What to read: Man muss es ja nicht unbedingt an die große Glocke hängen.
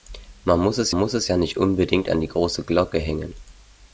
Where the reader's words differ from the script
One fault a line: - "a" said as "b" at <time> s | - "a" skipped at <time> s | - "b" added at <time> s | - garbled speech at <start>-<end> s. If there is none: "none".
- "muss es" added at 0.9 s